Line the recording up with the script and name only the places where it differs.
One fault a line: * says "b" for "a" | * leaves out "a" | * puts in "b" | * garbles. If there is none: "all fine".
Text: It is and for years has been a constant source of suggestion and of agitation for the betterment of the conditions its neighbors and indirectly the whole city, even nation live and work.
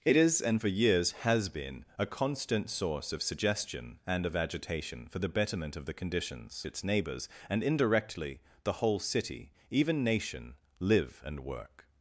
all fine